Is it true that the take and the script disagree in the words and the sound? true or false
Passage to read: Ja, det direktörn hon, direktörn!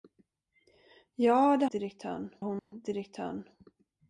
true